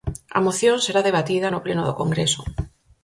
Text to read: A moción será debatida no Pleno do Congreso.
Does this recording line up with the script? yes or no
yes